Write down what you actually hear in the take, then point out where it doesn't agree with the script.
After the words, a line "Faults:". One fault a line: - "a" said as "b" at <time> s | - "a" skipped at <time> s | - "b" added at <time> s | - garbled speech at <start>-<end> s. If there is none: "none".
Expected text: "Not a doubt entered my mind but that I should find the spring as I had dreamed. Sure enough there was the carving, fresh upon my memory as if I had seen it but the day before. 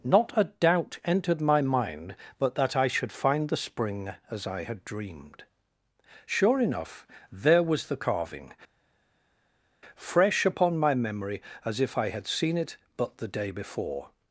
"Not a doubt entered my mind but that I should find the spring as I had dreamed. Sure enough there was the carving, fresh upon my memory as if I had seen it but the day before.
Faults:
none